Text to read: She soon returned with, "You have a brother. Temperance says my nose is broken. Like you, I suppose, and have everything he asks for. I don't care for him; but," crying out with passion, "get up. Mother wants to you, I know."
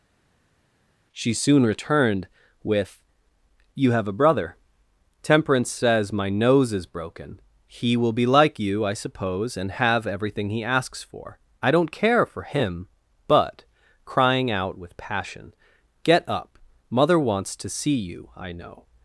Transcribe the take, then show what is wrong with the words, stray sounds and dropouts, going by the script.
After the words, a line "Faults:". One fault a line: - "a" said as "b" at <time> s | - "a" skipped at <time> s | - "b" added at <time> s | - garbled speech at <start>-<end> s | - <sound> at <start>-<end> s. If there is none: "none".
She soon returned with, "You have a brother. Temperance says my nose is broken. He will be like you, I suppose, and have everything he asks for. I don't care for him; but," crying out with passion, "get up. Mother wants to see you, I know."
Faults:
- "He will be" added at 7.7 s
- "see" added at 17.7 s